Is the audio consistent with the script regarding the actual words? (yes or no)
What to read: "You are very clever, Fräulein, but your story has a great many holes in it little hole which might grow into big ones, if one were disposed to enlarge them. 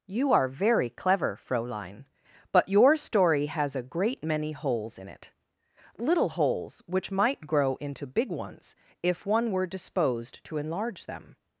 no